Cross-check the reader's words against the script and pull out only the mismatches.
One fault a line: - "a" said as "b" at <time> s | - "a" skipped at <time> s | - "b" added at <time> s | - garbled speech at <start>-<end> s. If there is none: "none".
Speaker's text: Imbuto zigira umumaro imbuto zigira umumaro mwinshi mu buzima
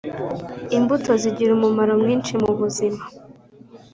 - "imbuto zigira umumaro" skipped at 1.9 s